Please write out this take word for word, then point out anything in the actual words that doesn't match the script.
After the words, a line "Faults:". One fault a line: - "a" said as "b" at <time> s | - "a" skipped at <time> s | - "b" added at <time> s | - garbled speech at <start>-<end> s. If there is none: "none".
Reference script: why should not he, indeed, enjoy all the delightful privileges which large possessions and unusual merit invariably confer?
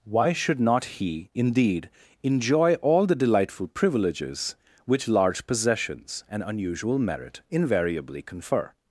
why should not he, indeed, enjoy all the delightful privileges which large possessions and unusual merit invariably confer?
Faults:
none